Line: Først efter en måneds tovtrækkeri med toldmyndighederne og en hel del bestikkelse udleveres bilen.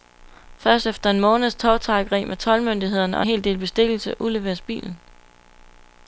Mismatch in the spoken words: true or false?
true